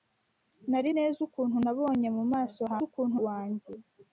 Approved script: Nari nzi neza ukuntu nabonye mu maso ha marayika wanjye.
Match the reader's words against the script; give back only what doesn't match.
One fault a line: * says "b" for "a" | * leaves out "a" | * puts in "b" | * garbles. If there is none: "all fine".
* leaves out "nzi"
* says "ukuntu" for "marayika"